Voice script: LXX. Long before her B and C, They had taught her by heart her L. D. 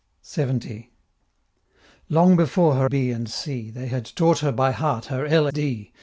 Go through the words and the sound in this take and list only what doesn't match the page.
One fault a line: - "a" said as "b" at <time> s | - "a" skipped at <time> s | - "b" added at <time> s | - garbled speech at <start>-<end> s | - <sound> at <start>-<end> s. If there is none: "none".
none